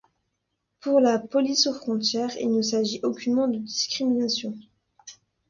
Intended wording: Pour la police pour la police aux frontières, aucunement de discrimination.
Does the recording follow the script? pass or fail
fail